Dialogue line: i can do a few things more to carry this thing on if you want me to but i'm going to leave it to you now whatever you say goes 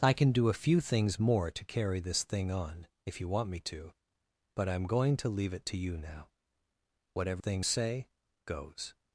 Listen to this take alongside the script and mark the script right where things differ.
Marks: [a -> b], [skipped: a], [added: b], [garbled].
i can do a few things more to carry this thing on if you want me to but i'm going to leave it to you now whatever [you -> thing] say goes